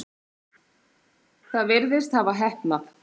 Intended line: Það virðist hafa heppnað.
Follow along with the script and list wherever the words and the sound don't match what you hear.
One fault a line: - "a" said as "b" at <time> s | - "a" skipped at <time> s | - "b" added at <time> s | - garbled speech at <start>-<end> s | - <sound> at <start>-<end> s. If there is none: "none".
none